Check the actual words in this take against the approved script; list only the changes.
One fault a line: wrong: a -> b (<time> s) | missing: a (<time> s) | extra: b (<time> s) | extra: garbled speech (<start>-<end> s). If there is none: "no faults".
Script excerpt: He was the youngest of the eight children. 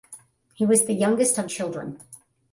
missing: the eight (1.5 s)